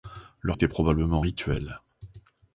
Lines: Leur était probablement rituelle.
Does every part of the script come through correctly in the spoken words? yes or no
yes